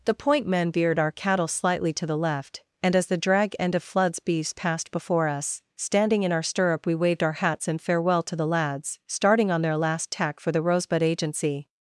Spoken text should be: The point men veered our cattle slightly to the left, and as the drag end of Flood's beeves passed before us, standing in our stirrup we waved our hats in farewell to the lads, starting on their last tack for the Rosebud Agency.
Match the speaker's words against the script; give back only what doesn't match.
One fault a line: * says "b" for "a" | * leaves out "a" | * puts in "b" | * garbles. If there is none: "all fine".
all fine